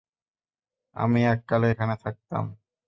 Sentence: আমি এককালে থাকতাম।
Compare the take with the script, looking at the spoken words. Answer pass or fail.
fail